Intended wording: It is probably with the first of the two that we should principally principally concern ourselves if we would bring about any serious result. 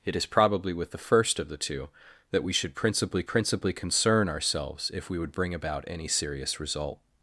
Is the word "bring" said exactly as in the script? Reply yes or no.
yes